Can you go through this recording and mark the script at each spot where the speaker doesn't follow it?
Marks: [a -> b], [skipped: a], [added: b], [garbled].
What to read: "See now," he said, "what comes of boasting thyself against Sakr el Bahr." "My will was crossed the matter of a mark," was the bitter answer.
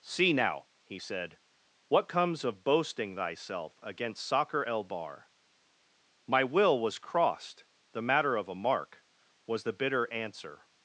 "See now," he said, "what comes of boasting thyself against Sakr el Bahr." "My will was crossed the matter of a mark," was the bitter answer.